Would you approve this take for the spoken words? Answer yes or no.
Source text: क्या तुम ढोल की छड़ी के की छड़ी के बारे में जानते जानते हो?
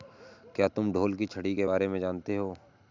no